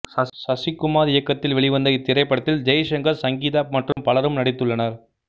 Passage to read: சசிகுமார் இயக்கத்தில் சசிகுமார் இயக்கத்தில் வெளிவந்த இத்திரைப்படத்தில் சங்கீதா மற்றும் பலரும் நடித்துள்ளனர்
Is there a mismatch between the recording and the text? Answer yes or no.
yes